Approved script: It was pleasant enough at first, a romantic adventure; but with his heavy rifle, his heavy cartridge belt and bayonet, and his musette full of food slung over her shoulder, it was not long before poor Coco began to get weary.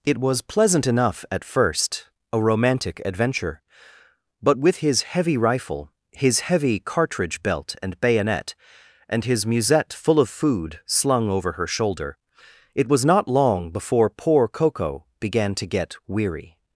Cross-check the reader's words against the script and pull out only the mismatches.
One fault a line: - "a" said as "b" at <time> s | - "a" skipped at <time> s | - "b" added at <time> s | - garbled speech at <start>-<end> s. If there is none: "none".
none